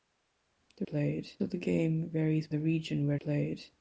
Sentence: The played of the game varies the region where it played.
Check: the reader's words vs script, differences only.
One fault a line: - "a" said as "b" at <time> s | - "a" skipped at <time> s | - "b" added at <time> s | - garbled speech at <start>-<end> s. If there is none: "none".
none